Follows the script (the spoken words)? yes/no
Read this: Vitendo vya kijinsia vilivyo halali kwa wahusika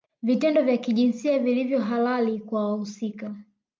yes